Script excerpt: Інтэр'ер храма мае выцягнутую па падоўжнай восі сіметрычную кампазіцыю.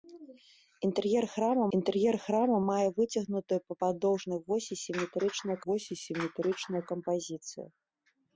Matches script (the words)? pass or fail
fail